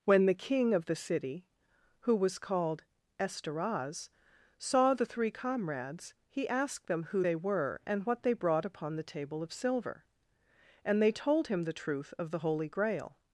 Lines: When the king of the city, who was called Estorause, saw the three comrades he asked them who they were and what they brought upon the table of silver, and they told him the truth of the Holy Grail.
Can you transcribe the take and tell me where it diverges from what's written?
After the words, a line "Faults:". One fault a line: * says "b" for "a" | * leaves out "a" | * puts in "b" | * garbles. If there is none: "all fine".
When the king of the city, who was called Estorause, saw the three comrades he asked them who they were and what they brought upon the table of silver, and they told him the truth of the Holy Grail.
Faults:
all fine